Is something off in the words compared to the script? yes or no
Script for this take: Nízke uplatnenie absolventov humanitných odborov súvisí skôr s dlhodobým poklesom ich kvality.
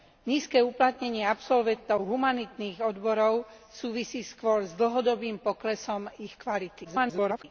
yes